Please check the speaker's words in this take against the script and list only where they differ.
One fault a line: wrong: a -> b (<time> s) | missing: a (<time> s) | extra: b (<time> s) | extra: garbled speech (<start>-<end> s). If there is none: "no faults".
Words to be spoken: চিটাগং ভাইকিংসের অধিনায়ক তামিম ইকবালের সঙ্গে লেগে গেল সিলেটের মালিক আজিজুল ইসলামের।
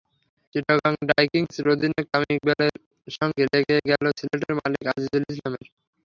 no faults